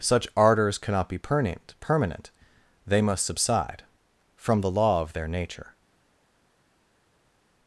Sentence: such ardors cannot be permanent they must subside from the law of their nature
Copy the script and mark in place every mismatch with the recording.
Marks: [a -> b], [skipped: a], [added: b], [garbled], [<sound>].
such ardors cannot be permanent [added: permanent] they must subside from the law of their nature